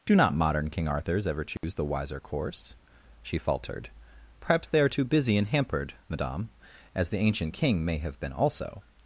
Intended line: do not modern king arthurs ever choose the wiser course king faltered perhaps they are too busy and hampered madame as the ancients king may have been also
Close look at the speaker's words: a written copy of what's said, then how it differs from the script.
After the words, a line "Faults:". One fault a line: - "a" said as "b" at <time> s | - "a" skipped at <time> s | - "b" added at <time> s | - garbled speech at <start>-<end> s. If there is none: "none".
do not modern king arthurs ever choose the wiser course she faltered perhaps they are too busy and hampered madame as the ancient king may have been also
Faults:
- "king" said as "she" at 3.2 s
- "ancients" said as "ancient" at 7.2 s